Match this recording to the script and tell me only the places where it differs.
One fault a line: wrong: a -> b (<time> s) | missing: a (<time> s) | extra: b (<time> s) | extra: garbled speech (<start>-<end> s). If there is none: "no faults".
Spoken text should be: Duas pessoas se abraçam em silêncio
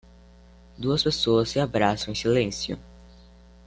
no faults